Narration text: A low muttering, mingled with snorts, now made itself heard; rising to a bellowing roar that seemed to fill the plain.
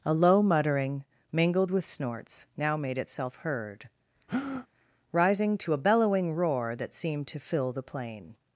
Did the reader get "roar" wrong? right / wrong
right